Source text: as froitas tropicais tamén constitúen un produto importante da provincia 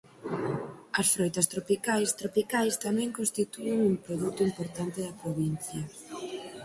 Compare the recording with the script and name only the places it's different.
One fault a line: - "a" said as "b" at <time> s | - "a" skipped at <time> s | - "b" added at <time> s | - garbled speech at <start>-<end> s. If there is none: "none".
- "tropicais" added at 2.2 s